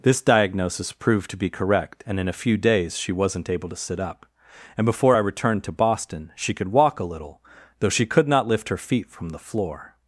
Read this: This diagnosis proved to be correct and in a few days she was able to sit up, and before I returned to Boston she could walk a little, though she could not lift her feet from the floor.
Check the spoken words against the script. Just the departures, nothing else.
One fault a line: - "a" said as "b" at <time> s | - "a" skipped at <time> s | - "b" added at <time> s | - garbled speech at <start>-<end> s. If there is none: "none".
- "was" said as "wasn't" at 3.1 s